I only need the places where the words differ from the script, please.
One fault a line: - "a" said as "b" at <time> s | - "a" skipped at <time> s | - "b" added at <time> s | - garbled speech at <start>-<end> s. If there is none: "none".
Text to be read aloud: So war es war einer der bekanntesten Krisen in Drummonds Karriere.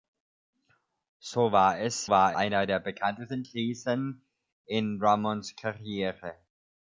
none